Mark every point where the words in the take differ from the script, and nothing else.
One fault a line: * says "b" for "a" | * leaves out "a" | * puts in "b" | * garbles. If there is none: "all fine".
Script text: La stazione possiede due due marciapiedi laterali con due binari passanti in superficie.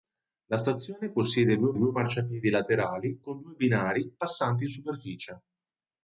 all fine